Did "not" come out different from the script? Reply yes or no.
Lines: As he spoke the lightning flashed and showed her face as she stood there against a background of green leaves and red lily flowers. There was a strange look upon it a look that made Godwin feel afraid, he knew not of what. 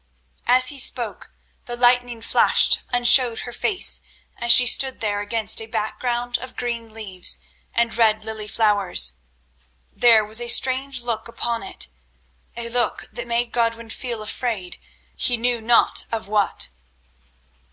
no